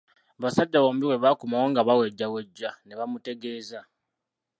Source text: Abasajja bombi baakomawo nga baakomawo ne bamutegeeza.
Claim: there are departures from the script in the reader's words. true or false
true